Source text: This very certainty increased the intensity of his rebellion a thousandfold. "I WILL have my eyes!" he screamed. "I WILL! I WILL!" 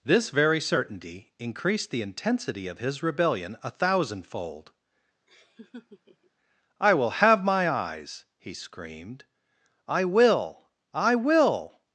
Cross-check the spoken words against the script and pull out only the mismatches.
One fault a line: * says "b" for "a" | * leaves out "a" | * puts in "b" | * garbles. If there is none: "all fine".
all fine